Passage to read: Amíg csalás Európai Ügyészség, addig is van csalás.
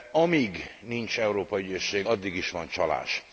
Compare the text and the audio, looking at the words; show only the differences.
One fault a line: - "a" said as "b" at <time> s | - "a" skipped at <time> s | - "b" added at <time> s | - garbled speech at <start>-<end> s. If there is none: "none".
- "csalás" said as "nincs" at 0.8 s